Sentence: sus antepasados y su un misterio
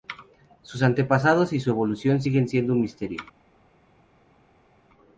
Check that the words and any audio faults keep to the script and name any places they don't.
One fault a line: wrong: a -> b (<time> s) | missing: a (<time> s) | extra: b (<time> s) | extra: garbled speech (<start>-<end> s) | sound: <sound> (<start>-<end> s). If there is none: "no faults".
extra: evolución siguen siendo (1.7 s)